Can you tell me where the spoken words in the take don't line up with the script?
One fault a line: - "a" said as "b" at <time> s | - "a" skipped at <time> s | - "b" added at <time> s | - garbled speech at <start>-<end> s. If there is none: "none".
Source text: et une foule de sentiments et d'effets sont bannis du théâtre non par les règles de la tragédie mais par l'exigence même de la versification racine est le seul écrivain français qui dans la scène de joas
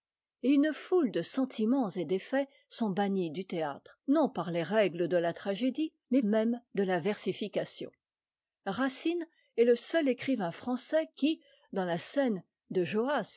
- "par l'exigence" skipped at 6.2 s